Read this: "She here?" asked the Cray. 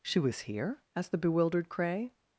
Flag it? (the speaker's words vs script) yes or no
yes